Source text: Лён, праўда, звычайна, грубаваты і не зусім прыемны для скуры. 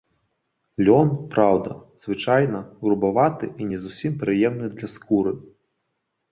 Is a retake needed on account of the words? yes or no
no